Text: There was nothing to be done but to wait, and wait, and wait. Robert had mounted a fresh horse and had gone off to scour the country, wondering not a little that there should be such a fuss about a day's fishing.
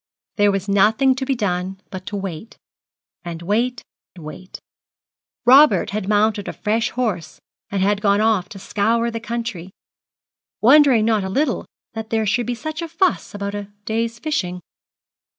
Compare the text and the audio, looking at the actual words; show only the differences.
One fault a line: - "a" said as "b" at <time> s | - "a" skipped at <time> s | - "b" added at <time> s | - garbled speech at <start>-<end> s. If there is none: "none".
- "and" skipped at 3.9 s